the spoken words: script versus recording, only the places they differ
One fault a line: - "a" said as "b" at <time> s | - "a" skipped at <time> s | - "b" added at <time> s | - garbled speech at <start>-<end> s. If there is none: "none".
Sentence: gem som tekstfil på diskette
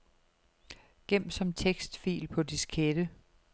none